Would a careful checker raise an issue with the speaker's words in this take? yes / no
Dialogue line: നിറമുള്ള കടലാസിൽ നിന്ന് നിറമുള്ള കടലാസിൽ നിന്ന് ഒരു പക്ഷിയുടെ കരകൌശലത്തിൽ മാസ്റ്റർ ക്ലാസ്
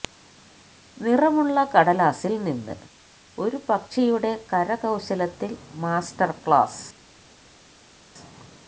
yes